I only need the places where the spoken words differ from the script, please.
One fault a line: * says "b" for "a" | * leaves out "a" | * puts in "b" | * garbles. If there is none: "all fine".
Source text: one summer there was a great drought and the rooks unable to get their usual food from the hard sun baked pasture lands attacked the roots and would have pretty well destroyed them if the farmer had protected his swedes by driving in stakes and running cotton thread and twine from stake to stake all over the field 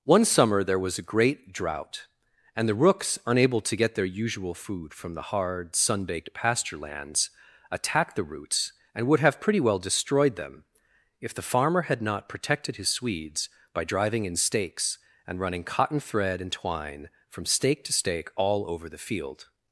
* puts in "not"